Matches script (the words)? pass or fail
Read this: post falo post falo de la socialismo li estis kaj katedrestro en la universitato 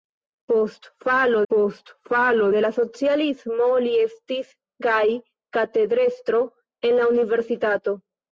pass